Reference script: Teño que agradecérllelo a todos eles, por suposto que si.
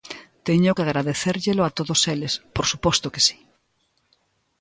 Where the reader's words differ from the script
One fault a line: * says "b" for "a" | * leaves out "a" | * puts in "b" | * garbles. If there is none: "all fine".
all fine